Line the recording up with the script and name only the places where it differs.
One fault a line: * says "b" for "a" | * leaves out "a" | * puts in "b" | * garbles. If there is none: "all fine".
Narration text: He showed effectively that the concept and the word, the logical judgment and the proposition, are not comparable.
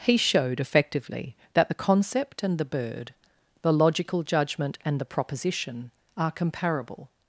* says "bird" for "word"
* leaves out "not"